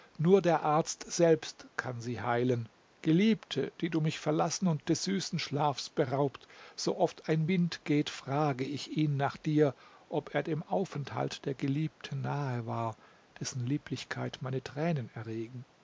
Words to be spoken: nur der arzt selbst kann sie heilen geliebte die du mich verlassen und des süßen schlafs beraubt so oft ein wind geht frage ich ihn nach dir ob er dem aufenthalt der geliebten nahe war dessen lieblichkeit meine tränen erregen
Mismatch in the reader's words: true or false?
false